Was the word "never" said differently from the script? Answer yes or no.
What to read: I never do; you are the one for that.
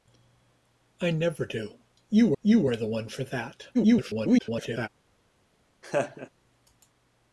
no